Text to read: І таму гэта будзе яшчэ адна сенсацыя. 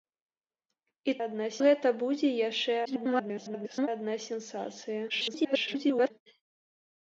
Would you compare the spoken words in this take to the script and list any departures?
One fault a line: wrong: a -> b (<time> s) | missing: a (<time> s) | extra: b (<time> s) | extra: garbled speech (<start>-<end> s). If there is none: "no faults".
wrong: таму -> адна (1.2 s)
extra: garbled speech (2.9-3.9 s)
extra: garbled speech (5.1-6.1 s)